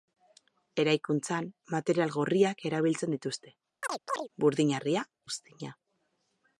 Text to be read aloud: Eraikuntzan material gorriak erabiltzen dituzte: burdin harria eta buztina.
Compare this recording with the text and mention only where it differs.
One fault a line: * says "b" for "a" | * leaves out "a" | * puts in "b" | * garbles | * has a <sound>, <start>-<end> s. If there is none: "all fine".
* has a chirp, 3.8-4.3 s
* leaves out "eta"